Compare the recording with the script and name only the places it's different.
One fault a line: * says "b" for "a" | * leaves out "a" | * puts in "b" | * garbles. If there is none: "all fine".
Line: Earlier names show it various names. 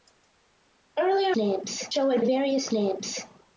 all fine